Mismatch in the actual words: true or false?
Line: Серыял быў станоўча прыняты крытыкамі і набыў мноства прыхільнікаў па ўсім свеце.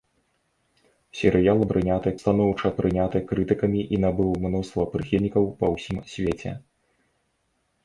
true